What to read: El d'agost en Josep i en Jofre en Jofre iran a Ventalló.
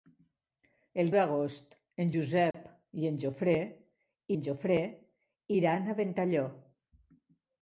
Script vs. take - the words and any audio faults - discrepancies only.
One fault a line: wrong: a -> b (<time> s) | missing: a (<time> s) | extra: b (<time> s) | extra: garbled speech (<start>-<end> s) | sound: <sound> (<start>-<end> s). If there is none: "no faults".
sound: dropout (2.5-2.5 s)